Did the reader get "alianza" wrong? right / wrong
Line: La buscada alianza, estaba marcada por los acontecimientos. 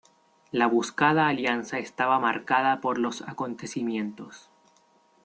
right